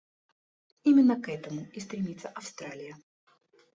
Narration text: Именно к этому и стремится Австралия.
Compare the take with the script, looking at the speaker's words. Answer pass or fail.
pass